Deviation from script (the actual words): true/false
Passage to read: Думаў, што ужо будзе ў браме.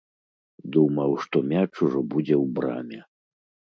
true